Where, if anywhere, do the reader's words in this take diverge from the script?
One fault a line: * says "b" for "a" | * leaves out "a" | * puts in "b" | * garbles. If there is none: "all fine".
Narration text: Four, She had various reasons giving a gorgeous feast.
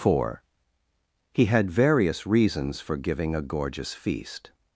* says "He" for "She"
* puts in "for"